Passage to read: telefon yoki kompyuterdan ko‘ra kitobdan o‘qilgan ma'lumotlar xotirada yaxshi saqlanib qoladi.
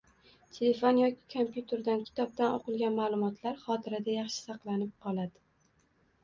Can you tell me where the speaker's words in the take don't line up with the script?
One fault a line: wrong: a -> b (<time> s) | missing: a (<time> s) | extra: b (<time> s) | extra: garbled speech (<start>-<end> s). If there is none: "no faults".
missing: ko‘ra (2.0 s)